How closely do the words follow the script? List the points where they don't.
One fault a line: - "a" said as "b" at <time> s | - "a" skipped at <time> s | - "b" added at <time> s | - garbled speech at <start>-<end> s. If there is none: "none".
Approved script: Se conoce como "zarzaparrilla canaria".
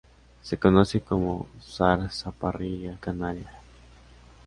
none